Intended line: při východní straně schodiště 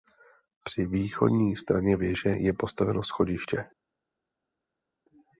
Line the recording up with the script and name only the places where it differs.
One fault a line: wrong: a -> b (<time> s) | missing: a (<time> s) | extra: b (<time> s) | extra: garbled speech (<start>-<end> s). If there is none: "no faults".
extra: věže je postaveno (2.0 s)